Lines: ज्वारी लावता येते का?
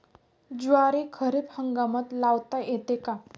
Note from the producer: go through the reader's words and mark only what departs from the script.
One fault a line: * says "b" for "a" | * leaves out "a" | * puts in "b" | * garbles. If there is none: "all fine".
* puts in "खरीप हंगामात"